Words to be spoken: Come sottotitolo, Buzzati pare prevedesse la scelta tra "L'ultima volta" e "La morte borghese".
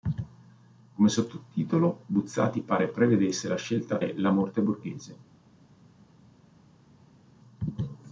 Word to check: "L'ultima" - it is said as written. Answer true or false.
false